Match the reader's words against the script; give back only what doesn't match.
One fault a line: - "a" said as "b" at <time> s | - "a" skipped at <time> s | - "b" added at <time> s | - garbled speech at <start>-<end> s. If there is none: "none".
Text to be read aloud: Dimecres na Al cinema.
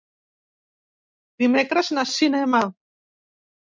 none